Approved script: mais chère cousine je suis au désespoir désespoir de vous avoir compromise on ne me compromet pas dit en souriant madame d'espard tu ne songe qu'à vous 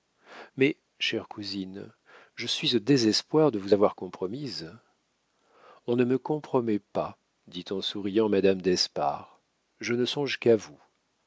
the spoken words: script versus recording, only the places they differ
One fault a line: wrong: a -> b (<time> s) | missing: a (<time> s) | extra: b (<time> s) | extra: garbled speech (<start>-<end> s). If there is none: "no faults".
missing: désespoir (3.5 s)
wrong: tu -> je (9.8 s)